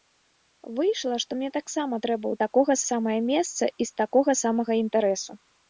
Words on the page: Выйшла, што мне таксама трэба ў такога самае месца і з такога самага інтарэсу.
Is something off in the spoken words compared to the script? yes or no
no